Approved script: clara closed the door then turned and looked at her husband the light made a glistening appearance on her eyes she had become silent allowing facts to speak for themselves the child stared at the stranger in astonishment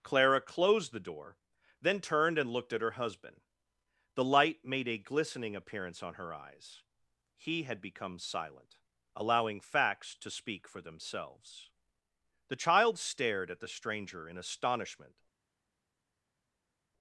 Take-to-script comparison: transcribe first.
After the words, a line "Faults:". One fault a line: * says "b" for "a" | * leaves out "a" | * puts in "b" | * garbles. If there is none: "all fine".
clara closed the door then turned and looked at her husband the light made a glistening appearance on her eyes he had become silent allowing facts to speak for themselves the child stared at the stranger in astonishment
Faults:
* says "he" for "she"